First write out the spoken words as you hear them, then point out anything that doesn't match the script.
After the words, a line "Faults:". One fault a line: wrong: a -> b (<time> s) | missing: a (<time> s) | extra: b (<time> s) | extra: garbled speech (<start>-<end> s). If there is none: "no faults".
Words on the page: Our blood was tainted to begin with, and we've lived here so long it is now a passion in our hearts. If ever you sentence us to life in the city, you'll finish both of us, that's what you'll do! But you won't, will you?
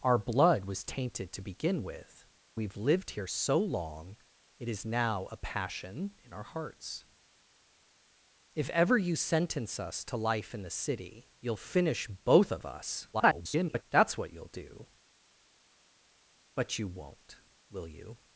Our blood was tainted to begin with, we've lived here so long it is now a passion in our hearts. If ever you sentence us to life in the city, you'll finish both of us, [garbled] that's what you'll do! But you won't, will you?
Faults:
missing: and (2.2 s)
extra: garbled speech (13.1-13.8 s)